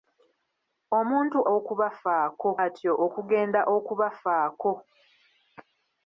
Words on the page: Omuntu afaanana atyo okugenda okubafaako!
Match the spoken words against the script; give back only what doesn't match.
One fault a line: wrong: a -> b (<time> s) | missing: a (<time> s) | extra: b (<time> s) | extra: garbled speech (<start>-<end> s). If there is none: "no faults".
wrong: afaanana -> okubafaako (1.6 s)